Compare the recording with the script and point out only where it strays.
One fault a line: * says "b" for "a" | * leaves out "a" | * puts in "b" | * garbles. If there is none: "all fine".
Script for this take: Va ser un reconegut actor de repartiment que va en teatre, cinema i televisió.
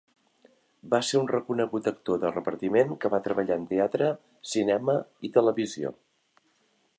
* puts in "treballar"